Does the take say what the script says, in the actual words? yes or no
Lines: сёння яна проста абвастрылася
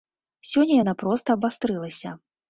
yes